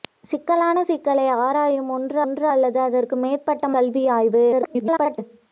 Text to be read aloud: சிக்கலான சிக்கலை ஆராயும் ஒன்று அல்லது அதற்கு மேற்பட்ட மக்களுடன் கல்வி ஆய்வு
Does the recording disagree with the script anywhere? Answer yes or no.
yes